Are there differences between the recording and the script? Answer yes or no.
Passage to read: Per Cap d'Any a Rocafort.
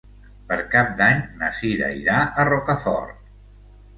yes